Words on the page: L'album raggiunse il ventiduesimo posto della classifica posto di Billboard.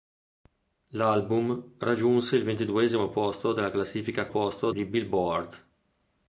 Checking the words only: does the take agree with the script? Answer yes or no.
yes